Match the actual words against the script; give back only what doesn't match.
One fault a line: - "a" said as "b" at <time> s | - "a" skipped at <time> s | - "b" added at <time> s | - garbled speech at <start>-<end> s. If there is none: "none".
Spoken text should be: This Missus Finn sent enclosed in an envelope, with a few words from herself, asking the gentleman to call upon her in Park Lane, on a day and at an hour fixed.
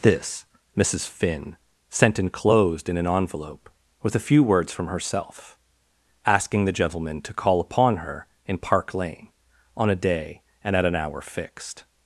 none